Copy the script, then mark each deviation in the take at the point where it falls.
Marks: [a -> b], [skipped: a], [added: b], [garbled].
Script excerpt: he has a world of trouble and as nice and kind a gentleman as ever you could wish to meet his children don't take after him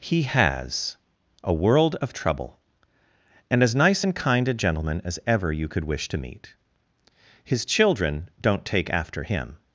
he has a world of trouble and as nice and kind a gentleman as ever you could wish to meet his children don't take after him